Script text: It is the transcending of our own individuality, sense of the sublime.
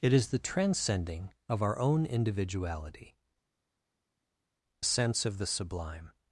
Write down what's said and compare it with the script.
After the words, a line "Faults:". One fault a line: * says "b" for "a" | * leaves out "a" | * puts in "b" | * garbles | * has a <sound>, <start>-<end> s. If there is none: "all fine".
It is the transcending of our own individuality, sense of the sublime.
Faults:
all fine